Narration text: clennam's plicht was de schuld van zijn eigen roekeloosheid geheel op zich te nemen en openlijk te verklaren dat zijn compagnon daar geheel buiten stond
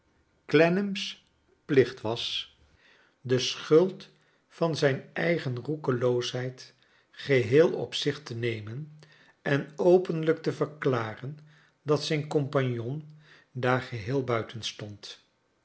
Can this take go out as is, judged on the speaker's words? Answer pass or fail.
pass